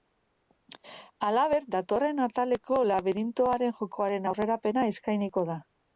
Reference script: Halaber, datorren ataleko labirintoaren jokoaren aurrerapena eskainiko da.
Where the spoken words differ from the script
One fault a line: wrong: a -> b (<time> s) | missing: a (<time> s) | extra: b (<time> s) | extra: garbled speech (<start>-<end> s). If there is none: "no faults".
no faults